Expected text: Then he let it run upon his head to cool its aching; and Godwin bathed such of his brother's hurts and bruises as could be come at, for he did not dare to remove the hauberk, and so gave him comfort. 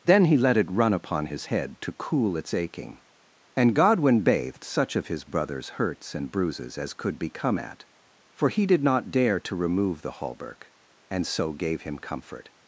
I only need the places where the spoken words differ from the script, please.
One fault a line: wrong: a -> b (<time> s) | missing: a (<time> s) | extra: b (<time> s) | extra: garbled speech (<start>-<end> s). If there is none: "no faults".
no faults